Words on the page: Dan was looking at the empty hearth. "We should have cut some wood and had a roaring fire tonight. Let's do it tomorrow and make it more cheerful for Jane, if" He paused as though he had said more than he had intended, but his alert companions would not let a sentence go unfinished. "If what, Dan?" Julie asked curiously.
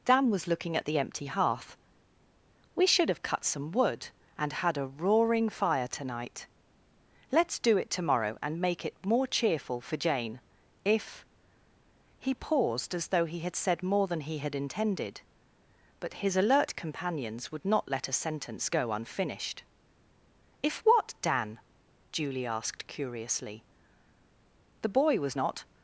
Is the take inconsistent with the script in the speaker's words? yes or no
yes